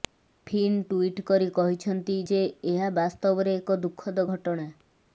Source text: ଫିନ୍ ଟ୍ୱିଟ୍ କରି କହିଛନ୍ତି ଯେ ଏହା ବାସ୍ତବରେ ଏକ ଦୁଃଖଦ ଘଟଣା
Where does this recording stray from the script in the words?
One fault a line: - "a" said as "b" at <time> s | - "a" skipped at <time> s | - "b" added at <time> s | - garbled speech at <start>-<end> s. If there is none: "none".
none